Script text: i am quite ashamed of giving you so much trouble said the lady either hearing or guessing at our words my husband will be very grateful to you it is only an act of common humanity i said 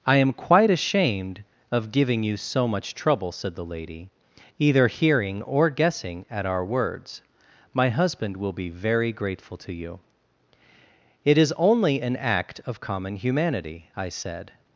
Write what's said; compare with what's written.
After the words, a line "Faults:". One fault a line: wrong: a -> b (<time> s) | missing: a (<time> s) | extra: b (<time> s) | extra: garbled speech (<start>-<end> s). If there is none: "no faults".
i am quite ashamed of giving you so much trouble said the lady either hearing or guessing at our words my husband will be very grateful to you it is only an act of common humanity i said
Faults:
no faults